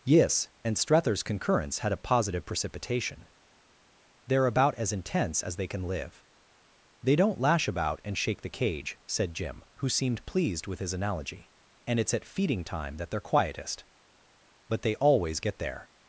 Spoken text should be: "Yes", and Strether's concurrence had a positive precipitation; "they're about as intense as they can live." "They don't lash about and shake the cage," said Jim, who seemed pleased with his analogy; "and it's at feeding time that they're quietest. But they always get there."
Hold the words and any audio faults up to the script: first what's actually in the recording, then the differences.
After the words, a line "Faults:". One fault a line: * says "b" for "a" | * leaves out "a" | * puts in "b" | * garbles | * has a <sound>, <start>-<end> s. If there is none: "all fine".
"Yes", and Strether's concurrence had a positive precipitation; "they're about as intense as they can live." "They don't lash about and shake the cage," said Jim, who seemed pleased with his analogy; "and it's at feeding time that they're quietest. But they always get there."
Faults:
all fine